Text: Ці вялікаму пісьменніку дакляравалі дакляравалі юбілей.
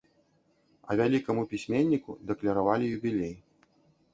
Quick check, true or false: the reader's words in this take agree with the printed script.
false